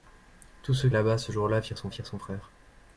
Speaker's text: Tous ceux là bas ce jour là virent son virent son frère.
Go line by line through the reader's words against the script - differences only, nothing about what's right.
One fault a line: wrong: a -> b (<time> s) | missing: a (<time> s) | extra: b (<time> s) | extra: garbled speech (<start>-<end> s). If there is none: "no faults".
no faults